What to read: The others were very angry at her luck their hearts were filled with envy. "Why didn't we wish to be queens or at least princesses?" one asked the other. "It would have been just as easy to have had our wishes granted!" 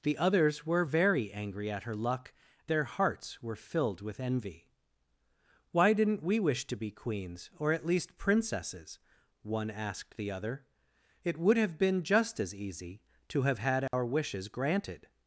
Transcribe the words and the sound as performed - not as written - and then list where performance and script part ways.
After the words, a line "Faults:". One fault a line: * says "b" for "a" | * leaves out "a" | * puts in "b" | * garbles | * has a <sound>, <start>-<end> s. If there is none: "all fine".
The others were very angry at her luck their hearts were filled with envy. "Why didn't we wish to be queens or at least princesses?" one asked the other. "It would have been just as easy to have had our wishes granted!"
Faults:
* has a dropout, 13.9-13.9 s